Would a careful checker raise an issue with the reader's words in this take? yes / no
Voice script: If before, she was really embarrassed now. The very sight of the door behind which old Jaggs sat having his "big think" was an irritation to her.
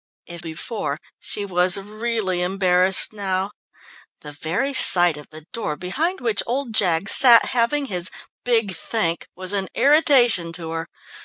no